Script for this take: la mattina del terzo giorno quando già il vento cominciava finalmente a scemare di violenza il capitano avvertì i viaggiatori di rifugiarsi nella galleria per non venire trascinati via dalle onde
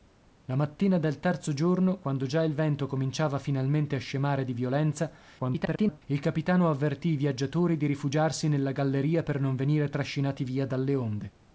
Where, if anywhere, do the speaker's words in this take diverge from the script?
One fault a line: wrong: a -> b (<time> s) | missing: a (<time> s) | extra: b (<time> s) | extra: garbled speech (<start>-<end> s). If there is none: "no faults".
extra: garbled speech (5.4-6.0 s)